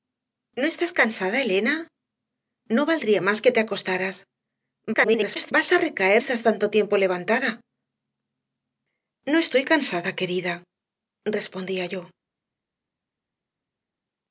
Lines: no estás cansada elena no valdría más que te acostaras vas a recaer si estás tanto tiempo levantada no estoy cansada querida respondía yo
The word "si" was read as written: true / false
false